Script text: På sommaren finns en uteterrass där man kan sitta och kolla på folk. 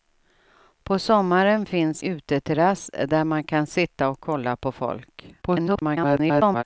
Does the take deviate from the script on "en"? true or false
true